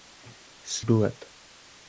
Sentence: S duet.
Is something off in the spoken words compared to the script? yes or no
no